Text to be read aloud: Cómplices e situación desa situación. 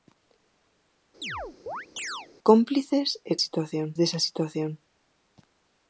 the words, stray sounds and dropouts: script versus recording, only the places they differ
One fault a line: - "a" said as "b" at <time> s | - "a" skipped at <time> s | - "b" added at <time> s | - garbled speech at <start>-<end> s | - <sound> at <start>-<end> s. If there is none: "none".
- chirp at 1.2-2.3 s